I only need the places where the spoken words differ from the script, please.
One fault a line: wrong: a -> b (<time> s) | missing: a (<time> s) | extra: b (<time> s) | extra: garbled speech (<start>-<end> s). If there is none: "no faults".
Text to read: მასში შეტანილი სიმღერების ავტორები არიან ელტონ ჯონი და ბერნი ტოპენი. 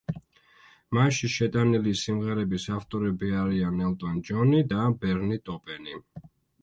no faults